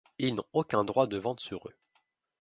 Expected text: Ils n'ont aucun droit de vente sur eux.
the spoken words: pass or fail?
pass